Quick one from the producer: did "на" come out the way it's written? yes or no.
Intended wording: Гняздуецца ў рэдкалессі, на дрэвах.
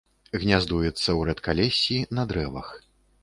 yes